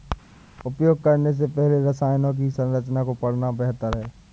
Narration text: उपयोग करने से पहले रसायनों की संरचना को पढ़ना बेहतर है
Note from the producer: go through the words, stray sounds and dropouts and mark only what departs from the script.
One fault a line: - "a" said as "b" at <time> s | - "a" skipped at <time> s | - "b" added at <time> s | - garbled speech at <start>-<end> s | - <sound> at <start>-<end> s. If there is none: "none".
none